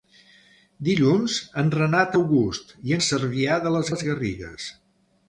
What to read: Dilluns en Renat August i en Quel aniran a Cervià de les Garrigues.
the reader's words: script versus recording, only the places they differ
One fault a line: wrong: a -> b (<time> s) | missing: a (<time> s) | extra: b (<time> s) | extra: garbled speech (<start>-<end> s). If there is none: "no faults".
missing: en Quel aniran (2.9 s)
extra: les (3.9 s)